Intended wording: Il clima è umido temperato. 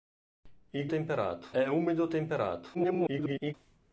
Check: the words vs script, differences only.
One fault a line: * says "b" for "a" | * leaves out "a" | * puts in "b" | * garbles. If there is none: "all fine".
* says "temperato" for "clima"
* garbles